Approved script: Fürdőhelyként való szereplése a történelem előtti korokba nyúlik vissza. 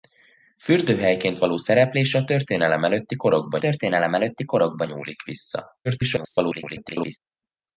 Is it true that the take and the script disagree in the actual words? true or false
true